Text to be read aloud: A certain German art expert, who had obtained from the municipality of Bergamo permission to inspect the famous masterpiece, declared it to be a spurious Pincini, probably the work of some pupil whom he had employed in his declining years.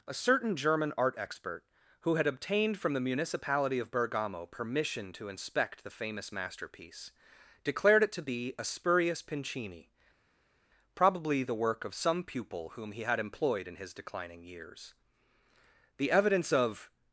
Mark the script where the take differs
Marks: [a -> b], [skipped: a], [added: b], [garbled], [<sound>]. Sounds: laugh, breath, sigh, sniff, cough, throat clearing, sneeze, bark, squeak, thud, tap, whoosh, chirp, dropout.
A certain German art expert, who had obtained from the municipality of Bergamo permission to inspect the famous masterpiece, declared it to be a spurious Pincini, probably the work of some pupil whom he had employed in his declining years. [added: The evidence of]